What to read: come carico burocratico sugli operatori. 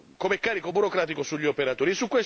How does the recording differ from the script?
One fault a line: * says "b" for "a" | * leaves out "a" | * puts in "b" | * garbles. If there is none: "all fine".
all fine